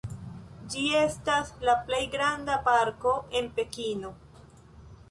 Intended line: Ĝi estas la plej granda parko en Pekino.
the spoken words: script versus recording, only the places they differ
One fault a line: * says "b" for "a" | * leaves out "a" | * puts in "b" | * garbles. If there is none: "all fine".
all fine